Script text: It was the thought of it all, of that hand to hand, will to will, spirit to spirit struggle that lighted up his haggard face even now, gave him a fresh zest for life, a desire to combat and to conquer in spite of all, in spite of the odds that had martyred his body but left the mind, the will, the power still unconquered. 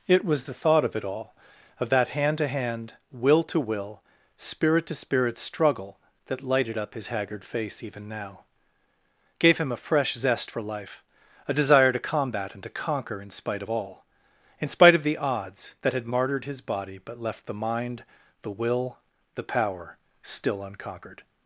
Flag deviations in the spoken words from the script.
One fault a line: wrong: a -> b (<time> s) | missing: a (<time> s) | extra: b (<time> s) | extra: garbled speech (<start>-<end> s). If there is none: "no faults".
no faults